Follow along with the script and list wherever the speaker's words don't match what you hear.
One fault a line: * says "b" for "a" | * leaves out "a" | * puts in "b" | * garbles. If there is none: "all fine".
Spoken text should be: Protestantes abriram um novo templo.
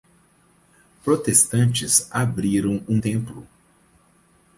* leaves out "novo"